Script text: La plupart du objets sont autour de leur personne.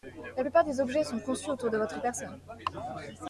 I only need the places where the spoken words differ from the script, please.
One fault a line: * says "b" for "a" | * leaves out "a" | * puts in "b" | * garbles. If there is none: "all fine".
* says "des" for "du"
* puts in "conçus"
* says "votre" for "leur"